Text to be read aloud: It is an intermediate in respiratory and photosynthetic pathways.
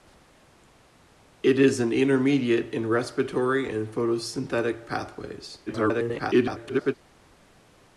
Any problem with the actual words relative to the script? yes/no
yes